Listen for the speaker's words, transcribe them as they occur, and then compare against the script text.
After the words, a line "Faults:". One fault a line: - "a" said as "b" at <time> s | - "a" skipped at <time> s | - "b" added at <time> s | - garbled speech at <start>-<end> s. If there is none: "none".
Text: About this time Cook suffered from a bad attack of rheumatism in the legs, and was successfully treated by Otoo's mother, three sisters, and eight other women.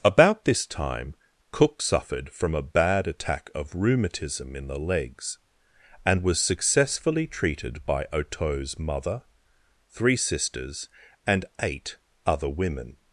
About this time Cook suffered from a bad attack of rheumatism in the legs, and was successfully treated by Otoo's mother, three sisters, and eight other women.
Faults:
none